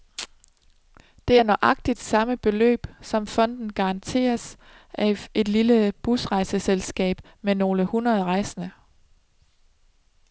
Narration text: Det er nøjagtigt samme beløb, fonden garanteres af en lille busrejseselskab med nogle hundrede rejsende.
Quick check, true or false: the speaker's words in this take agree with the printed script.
false